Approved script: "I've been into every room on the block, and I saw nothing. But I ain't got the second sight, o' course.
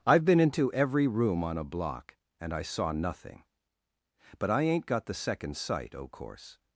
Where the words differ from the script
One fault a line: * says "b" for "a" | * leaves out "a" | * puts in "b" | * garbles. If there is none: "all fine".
* says "a" for "the"